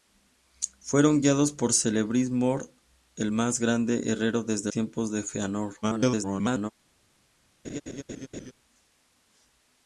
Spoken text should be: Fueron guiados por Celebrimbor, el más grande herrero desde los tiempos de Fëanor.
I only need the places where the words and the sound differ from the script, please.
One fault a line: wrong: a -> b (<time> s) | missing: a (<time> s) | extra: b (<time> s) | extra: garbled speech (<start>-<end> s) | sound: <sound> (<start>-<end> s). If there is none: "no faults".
missing: los (4.7 s)
extra: garbled speech (5.8-6.7 s)
sound: laugh (7.6-8.5 s)